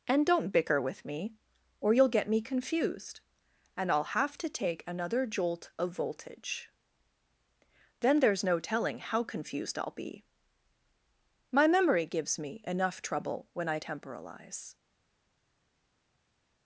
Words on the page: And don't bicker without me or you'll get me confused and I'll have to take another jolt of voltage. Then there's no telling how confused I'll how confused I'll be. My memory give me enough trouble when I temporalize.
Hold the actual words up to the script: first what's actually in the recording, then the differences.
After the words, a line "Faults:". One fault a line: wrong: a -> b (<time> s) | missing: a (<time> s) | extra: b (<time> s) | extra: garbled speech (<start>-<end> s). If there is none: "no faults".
And don't bicker with me or you'll get me confused and I'll have to take another jolt of voltage. Then there's no telling how confused I'll be. My memory gives me enough trouble when I temporalize.
Faults:
wrong: without -> with (0.8 s)
missing: how confused I'll (9.9 s)
wrong: give -> gives (12.1 s)